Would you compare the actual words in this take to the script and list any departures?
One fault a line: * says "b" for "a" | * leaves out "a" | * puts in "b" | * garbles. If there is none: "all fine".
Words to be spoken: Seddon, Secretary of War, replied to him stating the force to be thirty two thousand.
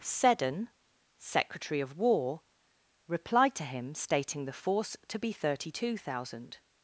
all fine